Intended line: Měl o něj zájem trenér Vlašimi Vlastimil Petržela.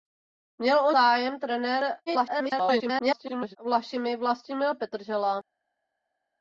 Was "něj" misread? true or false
true